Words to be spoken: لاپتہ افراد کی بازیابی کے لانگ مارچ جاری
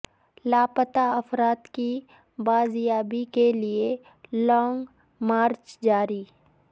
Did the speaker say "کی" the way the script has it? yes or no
yes